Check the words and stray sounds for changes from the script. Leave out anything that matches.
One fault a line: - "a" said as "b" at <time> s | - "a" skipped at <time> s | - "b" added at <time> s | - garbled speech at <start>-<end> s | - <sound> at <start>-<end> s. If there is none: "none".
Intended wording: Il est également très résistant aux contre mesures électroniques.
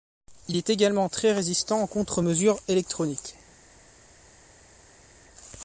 none